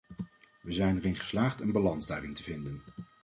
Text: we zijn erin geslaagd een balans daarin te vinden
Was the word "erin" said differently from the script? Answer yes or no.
no